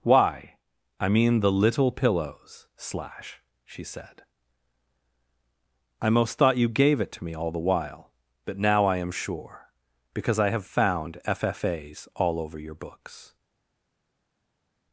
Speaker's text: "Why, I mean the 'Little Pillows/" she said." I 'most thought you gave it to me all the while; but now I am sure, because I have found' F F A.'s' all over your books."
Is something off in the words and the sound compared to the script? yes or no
yes